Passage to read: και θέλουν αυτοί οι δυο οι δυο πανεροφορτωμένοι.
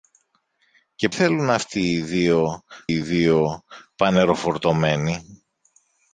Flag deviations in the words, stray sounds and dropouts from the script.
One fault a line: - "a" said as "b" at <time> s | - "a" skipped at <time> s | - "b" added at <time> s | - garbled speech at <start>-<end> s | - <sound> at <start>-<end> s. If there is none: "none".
none